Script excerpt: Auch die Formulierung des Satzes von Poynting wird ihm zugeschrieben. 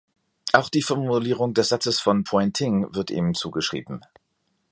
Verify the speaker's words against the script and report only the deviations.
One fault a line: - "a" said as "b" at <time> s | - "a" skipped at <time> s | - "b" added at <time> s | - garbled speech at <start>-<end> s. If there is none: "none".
none